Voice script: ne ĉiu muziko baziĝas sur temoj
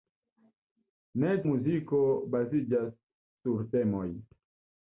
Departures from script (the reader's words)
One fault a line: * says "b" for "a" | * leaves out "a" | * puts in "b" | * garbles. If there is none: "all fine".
* leaves out "ĉiu"